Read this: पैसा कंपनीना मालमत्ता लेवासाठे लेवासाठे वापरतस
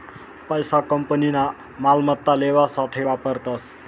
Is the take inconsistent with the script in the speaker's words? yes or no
yes